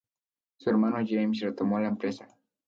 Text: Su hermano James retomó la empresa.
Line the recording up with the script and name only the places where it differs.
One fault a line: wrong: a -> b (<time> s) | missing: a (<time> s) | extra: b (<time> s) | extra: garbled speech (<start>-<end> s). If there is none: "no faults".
no faults